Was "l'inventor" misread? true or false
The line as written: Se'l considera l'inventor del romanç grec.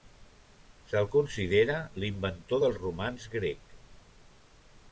false